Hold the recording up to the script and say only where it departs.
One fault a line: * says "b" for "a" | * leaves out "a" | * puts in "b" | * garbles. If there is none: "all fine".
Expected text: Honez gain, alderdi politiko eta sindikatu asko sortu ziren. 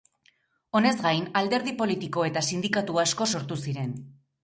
all fine